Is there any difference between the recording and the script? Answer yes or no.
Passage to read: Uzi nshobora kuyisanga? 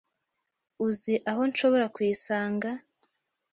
yes